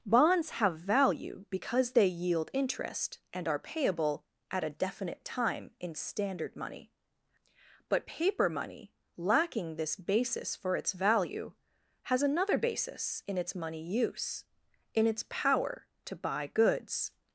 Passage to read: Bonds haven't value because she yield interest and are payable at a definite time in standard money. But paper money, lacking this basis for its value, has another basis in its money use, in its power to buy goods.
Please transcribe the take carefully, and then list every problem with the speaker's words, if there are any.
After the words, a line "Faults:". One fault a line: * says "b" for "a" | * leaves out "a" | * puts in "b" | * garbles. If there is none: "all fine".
Bonds have value because they yield interest and are payable at a definite time in standard money. But paper money, lacking this basis for its value, has another basis in its money use, in its power to buy goods.
Faults:
* says "have" for "haven't"
* says "they" for "she"